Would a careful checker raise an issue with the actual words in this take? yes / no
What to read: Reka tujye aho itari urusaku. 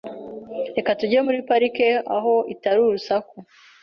yes